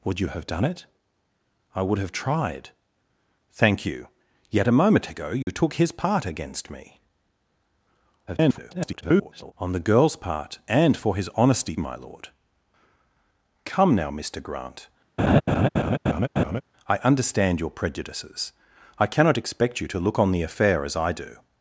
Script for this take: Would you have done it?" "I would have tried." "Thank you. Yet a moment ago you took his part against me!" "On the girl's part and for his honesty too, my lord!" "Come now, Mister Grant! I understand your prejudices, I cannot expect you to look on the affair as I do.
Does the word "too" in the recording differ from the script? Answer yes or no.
yes